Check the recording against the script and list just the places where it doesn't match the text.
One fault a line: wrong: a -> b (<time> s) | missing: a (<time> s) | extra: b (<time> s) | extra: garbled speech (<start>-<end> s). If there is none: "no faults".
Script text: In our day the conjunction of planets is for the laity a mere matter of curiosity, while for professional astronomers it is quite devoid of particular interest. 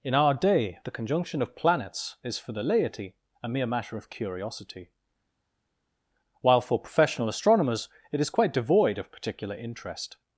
no faults